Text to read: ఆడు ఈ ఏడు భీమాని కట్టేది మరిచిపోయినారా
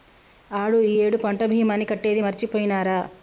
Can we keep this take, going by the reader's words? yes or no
no